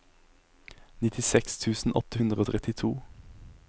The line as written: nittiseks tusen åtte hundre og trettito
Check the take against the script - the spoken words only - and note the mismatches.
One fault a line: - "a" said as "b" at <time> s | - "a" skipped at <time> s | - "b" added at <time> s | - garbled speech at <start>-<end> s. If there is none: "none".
none